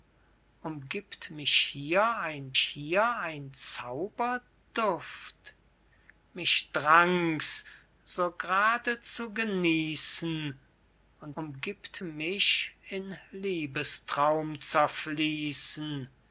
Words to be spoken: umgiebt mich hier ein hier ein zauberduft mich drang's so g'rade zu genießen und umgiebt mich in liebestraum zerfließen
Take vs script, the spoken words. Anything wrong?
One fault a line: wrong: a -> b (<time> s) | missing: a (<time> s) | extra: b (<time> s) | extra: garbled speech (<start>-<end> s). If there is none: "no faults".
no faults